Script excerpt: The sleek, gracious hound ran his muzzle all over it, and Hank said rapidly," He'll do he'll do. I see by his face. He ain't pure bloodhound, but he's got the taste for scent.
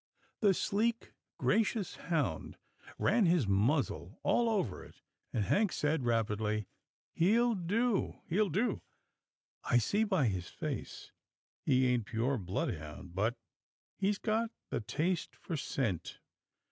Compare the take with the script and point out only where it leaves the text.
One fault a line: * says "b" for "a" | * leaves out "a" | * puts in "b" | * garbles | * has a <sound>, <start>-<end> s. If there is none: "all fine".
all fine